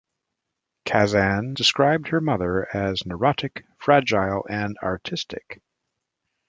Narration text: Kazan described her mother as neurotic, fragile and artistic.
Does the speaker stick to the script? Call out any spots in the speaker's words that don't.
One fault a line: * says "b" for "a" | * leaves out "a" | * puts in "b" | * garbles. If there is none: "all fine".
all fine